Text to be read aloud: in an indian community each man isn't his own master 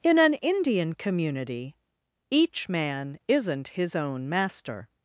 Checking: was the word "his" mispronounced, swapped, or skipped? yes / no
no